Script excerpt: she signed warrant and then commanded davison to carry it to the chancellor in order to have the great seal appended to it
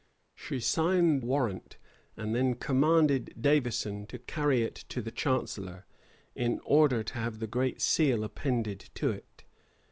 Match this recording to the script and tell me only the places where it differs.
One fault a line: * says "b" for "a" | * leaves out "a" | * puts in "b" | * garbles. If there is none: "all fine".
all fine